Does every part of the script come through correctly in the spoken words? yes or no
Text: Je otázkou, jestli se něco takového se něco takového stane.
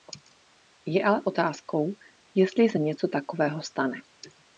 no